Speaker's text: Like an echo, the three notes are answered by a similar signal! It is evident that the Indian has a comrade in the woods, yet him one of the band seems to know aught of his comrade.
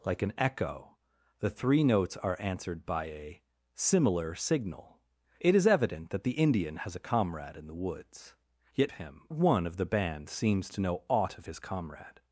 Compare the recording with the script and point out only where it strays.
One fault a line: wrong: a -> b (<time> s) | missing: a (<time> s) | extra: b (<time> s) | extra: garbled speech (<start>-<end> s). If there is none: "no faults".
no faults